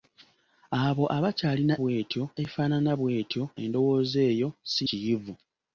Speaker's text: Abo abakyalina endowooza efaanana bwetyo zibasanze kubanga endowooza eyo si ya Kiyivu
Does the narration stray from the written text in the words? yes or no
yes